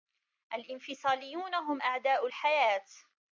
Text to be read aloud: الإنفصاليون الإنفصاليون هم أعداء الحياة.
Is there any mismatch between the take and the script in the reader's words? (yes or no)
yes